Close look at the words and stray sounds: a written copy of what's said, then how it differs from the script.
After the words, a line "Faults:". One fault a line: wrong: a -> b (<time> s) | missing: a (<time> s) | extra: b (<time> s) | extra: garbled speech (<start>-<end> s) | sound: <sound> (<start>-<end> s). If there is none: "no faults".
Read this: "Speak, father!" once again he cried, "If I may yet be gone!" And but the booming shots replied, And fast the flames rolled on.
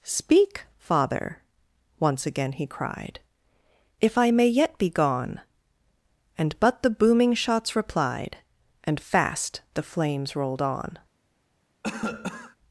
"Speak, father!" once again he cried, "If I may yet be gone!" And but the booming shots replied, And fast the flames rolled on.
Faults:
sound: cough (11.8-12.6 s)